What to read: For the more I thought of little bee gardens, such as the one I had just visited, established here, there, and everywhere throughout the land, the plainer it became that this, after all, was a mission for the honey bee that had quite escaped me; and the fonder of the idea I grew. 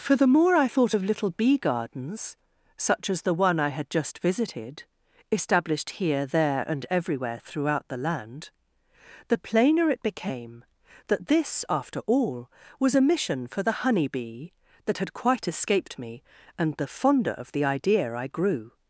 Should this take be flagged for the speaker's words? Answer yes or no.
no